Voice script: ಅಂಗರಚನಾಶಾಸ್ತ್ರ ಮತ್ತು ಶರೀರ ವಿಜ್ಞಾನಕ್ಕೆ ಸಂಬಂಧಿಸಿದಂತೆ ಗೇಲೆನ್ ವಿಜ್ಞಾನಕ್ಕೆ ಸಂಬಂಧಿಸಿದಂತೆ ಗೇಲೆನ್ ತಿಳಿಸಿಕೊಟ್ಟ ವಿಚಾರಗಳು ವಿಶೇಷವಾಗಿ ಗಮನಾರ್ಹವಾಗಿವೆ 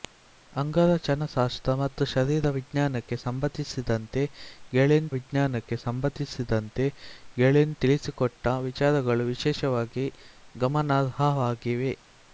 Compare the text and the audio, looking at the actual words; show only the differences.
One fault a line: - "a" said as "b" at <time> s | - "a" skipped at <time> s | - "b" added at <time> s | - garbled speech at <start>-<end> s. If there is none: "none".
none